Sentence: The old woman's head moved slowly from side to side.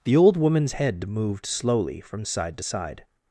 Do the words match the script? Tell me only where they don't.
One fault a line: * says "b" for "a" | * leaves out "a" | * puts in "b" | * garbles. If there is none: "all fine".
all fine